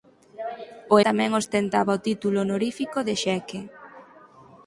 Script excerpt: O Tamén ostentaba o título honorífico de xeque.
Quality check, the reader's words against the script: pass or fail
pass